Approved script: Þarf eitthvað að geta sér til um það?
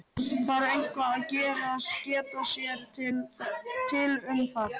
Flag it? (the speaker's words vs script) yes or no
no